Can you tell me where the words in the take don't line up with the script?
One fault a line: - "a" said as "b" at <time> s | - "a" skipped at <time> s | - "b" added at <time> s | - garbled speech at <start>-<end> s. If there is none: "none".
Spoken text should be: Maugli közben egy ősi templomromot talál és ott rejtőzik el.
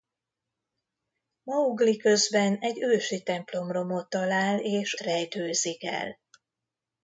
- "ott" skipped at 5.0 s